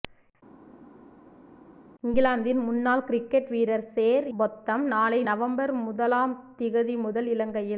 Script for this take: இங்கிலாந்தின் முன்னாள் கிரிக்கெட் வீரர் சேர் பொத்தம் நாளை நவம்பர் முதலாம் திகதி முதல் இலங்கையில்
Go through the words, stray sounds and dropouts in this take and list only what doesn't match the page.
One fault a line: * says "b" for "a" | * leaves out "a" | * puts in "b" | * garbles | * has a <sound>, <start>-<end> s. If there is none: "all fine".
all fine